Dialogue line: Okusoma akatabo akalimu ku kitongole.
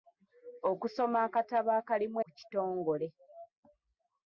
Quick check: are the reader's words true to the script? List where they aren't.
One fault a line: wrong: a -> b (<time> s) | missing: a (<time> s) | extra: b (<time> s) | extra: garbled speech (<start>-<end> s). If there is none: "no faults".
no faults